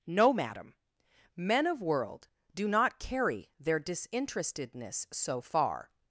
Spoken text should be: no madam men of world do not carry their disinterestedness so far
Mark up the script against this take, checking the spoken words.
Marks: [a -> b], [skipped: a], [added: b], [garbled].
no madam men of world do not carry their disinterestedness so far